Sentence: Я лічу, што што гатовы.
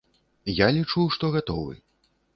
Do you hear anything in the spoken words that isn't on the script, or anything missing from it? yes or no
yes